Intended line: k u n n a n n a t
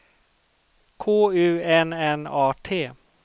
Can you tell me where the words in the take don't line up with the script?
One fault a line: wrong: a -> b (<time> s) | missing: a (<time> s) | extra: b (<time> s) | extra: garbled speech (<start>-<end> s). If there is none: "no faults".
missing: n n a (2.5 s)